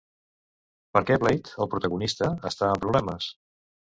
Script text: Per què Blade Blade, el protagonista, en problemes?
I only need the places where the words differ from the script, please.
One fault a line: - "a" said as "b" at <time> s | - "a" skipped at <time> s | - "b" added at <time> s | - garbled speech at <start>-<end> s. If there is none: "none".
- "Blade" skipped at 1.5 s
- "està" added at 2.5 s